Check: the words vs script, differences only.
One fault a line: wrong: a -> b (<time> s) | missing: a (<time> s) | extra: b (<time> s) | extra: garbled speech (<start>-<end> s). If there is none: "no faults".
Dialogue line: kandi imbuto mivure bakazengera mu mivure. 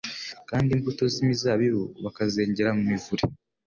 wrong: mivure -> z'imizabibu (1.1 s)